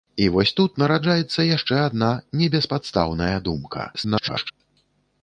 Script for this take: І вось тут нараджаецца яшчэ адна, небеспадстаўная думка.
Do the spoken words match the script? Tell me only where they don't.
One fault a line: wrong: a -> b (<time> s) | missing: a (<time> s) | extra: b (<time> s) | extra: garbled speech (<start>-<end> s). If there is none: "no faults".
extra: garbled speech (3.9-4.5 s)